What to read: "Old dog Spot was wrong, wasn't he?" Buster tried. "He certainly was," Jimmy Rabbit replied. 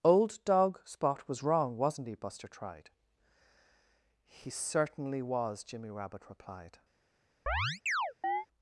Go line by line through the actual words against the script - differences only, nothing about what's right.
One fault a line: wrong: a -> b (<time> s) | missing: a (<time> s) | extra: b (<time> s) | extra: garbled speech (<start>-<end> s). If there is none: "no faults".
no faults